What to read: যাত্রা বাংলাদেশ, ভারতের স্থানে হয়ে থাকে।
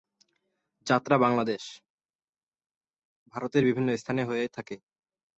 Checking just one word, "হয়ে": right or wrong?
right